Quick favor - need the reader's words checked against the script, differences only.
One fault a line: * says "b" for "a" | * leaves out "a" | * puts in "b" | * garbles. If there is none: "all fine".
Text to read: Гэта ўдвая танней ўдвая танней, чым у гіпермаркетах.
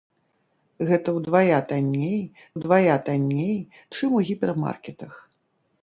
all fine